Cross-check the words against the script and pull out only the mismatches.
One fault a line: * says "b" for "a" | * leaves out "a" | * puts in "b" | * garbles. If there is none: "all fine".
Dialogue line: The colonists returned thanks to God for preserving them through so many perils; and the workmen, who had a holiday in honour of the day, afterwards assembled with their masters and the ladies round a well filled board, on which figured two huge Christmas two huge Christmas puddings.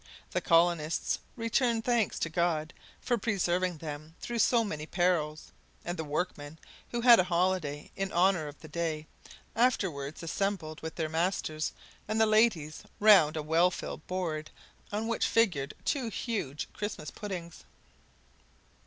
* leaves out "two huge Christmas"